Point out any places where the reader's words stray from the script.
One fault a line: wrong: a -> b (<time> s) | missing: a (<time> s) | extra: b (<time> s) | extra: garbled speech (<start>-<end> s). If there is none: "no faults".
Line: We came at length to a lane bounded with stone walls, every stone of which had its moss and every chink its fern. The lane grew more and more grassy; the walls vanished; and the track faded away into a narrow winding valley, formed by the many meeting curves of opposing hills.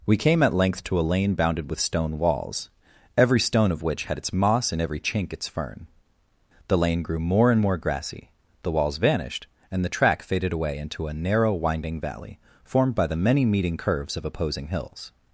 no faults